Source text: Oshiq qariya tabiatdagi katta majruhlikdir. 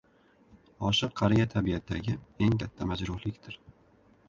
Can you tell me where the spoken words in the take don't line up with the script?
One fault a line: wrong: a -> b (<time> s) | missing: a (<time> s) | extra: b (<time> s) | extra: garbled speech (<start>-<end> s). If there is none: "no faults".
extra: eng (2.5 s)